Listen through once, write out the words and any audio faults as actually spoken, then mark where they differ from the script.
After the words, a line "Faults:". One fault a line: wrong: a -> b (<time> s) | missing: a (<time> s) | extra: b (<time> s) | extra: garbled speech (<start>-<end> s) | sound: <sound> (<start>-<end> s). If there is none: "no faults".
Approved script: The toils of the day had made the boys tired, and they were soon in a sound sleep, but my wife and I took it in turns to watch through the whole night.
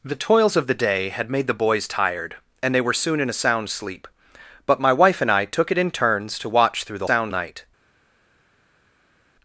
The toils of the day had made the boys tired, and they were soon in a sound sleep, but my wife and I took it in turns to watch through the sound night.
Faults:
wrong: whole -> sound (7.0 s)